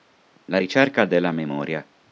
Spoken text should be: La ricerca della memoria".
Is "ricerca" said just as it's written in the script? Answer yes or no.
yes